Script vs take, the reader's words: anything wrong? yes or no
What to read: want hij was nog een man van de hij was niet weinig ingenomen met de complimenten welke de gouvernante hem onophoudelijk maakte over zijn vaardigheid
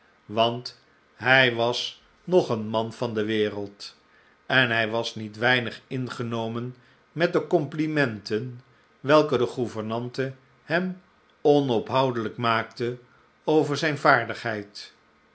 yes